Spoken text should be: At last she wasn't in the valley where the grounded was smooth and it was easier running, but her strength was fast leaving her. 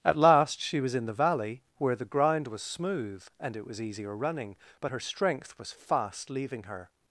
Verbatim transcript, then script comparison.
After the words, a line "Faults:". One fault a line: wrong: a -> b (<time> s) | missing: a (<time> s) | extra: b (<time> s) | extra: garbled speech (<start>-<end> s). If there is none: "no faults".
At last she was in the valley where the ground was smooth and it was easier running, but her strength was fast leaving her.
Faults:
wrong: wasn't -> was (0.8 s)
wrong: grounded -> ground (2.1 s)